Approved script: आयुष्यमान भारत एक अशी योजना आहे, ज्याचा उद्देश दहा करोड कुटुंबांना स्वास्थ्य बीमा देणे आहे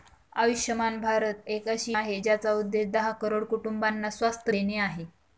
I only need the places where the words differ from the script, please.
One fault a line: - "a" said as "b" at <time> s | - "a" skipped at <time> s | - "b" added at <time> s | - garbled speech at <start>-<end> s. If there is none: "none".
- "योजना" skipped at 2.0 s
- "बीमा" skipped at 4.5 s